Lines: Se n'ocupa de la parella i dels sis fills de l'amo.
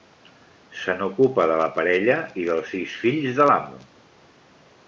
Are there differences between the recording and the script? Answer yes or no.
no